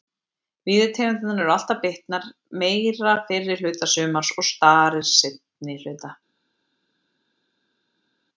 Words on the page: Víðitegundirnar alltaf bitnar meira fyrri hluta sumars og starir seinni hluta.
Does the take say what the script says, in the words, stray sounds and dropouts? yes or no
no